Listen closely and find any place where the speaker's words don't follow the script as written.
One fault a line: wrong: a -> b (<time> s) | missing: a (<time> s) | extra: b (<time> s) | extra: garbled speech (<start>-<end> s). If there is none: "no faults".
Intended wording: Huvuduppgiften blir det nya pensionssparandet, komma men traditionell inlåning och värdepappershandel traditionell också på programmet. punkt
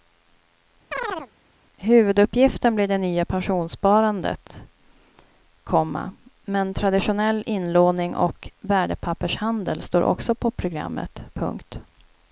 wrong: traditionell -> står (9.8 s)